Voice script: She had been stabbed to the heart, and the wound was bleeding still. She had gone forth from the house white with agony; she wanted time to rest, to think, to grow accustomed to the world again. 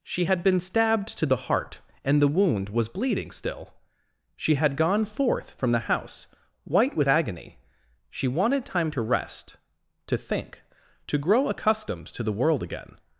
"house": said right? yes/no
yes